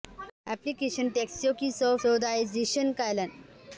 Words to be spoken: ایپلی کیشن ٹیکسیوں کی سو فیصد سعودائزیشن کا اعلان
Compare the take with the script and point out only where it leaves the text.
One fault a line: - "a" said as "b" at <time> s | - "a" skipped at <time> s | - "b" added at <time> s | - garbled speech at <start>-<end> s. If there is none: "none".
- "فیصد" skipped at 1.9 s